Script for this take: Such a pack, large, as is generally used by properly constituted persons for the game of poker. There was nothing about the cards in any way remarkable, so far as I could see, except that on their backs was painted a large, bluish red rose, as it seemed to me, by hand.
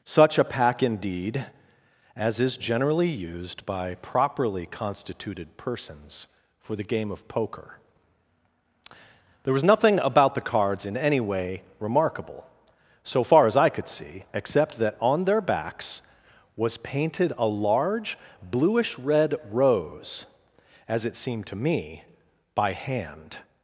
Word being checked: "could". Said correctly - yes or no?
yes